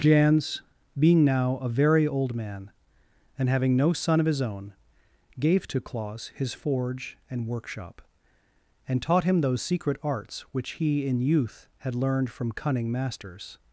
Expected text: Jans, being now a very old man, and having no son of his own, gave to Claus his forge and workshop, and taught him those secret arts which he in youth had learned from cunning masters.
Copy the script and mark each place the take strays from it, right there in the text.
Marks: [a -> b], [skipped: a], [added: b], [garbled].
Jans, being now a very old man, and having no son of his own, gave to Claus his forge and workshop, and taught him those secret arts which he in youth had learned from cunning masters.